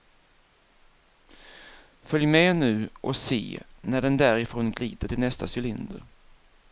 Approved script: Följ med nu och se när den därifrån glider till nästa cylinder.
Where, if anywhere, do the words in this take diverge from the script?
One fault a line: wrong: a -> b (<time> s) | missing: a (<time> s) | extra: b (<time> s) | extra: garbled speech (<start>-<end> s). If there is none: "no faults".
no faults